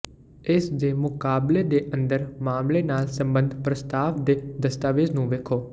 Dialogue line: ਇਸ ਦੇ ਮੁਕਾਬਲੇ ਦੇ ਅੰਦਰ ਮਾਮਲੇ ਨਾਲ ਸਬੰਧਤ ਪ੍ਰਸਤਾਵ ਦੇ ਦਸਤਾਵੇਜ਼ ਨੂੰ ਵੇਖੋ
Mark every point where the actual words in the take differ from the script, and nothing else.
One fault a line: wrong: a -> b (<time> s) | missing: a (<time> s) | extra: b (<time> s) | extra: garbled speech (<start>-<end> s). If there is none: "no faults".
no faults